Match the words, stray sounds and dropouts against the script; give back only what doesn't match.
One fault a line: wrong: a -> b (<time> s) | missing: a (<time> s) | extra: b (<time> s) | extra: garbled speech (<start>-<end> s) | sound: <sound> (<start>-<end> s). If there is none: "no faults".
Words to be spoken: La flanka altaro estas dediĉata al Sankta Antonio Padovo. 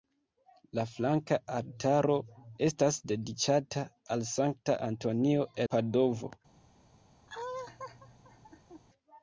sound: laugh (7.3-8.8 s)